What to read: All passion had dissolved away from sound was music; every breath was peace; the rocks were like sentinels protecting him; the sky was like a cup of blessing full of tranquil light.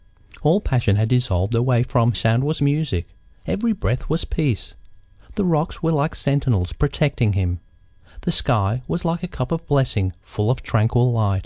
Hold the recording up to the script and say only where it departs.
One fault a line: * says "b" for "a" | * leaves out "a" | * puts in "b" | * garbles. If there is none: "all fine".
all fine